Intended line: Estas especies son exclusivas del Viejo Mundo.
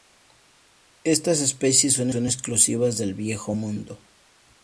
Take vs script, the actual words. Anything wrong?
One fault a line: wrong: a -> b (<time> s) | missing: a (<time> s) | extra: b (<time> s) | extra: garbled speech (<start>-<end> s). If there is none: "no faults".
extra: son (2.1 s)